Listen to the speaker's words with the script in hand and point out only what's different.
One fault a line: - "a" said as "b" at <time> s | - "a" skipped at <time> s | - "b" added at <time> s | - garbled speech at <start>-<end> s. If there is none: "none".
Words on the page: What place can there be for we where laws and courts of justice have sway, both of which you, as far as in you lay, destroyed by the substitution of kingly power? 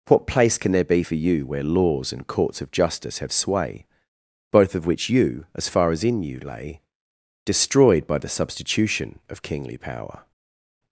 - "we" said as "you" at 1.2 s